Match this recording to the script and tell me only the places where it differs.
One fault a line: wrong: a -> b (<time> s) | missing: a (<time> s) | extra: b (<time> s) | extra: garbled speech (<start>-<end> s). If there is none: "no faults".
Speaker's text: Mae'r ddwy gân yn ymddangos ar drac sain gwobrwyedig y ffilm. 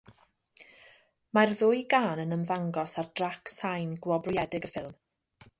no faults